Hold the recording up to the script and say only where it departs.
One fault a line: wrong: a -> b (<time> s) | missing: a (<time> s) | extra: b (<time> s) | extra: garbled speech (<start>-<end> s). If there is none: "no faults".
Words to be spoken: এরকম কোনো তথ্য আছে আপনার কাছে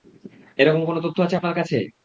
no faults